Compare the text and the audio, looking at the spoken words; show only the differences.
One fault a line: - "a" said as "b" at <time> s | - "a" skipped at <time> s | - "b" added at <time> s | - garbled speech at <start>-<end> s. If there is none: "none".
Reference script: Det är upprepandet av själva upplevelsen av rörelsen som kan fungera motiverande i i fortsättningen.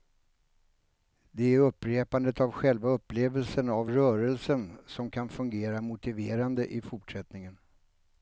- "i" skipped at 6.8 s